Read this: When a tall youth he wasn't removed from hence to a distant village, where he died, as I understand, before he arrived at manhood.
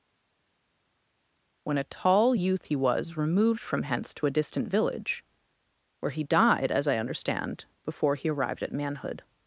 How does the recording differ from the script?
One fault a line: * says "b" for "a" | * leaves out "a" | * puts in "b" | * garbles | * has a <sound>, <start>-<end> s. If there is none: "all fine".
* says "was" for "wasn't"